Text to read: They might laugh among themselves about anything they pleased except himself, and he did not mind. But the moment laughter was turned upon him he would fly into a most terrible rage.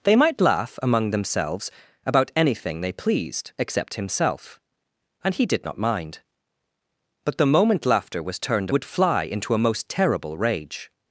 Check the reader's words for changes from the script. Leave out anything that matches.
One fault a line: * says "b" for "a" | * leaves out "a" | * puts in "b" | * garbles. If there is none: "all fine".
* leaves out "upon him he"